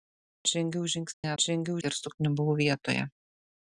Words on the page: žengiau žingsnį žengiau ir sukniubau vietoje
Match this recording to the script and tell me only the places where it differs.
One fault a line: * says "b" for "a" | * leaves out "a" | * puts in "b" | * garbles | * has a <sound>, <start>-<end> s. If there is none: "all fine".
* has a dropout, 1.1-1.2 s